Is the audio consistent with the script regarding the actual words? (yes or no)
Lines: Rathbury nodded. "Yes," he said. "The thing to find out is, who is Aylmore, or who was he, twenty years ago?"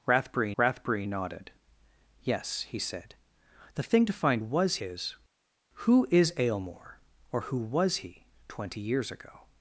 no